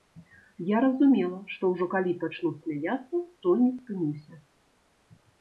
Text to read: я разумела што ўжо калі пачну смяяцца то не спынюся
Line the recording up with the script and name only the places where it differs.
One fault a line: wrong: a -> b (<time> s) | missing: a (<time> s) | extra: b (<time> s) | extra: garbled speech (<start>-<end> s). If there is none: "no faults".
no faults